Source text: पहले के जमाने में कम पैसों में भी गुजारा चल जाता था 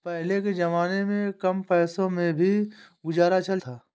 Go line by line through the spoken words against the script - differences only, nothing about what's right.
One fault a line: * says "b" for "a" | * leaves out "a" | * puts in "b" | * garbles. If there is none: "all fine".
* leaves out "जाता"